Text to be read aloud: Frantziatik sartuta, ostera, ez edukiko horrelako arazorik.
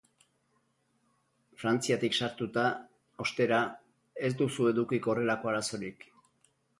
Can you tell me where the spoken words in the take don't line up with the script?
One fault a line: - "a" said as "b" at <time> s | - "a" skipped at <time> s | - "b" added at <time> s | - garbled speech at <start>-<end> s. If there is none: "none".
- "duzu" added at 4.4 s